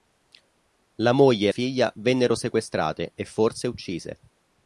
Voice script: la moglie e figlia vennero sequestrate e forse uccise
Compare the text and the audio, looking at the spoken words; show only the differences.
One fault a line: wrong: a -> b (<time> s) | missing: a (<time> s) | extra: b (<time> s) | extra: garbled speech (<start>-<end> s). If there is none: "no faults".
no faults